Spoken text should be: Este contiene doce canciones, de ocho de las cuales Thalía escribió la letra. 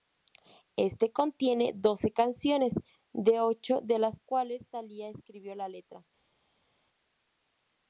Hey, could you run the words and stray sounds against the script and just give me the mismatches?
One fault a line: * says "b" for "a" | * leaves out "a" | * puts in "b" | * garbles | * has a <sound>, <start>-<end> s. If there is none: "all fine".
all fine